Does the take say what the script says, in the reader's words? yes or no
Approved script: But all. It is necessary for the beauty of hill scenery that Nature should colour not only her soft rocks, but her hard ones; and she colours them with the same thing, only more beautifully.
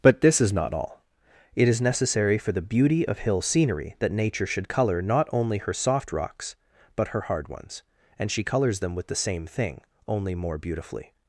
no